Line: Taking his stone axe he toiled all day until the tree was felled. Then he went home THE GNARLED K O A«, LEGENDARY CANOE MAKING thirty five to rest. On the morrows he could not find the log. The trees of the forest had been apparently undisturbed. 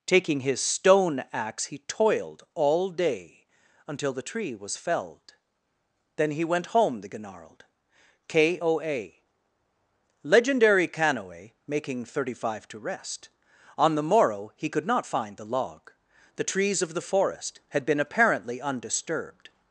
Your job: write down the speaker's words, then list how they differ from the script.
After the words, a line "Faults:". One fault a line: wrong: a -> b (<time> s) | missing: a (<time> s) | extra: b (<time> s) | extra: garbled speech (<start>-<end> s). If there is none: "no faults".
Taking his stone axe he toiled all day until the tree was felled. Then he went home THE GNARLED K O A«, LEGENDARY CANOE MAKING thirty five to rest. On the morrow he could not find the log. The trees of the forest had been apparently undisturbed.
Faults:
wrong: morrows -> morrow (14.0 s)